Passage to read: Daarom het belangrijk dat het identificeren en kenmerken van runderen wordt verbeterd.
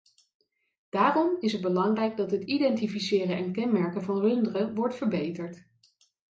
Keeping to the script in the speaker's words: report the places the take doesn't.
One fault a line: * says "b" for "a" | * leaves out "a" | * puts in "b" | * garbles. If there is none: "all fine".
* puts in "is"